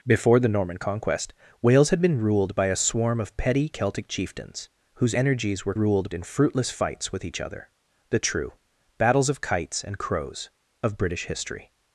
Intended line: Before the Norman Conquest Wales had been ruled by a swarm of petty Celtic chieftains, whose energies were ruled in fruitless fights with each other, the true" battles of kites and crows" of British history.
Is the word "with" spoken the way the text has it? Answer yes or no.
yes